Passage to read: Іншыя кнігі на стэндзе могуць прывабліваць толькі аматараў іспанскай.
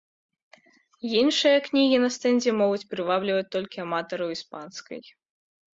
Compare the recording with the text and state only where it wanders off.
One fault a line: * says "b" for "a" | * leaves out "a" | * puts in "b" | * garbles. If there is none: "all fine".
all fine